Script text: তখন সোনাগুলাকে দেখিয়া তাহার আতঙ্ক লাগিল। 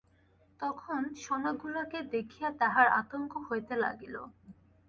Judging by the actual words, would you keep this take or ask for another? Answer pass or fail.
fail